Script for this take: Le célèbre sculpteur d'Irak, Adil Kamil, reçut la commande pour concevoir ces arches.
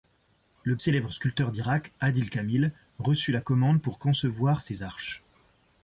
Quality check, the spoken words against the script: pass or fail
pass